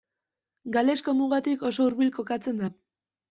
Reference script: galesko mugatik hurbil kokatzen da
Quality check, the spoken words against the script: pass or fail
fail